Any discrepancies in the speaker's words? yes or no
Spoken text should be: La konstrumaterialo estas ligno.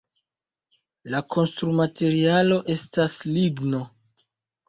no